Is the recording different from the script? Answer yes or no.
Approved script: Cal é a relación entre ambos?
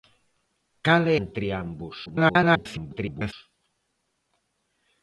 yes